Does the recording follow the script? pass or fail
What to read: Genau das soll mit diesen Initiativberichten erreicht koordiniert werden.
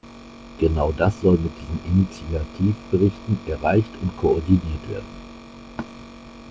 fail